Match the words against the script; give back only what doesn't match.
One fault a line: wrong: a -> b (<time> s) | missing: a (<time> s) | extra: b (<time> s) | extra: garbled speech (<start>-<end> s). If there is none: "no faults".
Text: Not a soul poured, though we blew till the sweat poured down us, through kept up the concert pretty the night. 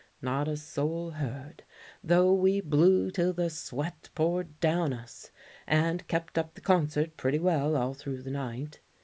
wrong: poured -> heard (1.1 s)
wrong: through -> and (5.7 s)
extra: well all through (7.4 s)